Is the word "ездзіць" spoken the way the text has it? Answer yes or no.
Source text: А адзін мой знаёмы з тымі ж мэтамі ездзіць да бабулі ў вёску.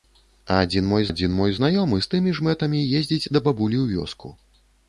yes